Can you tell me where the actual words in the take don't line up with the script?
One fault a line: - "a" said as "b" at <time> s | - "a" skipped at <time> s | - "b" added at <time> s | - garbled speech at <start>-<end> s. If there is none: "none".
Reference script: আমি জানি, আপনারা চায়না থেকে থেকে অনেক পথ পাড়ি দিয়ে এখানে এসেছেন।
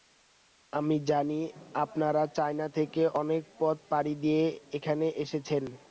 - "থেকে" skipped at 3.0 s